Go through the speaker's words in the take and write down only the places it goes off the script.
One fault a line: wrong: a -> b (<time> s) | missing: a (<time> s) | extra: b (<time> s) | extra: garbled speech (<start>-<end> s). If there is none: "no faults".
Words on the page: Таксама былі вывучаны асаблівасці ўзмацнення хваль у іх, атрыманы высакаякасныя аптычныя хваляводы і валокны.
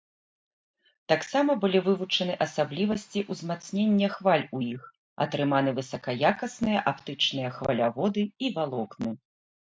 no faults